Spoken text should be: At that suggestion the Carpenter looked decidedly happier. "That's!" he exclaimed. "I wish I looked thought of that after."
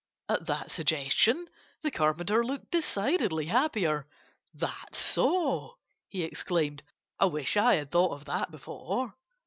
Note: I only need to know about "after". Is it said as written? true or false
false